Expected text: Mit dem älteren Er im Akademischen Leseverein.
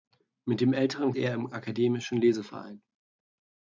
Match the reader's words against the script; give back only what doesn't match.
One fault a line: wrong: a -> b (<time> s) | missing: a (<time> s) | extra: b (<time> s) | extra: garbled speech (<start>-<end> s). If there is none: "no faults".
no faults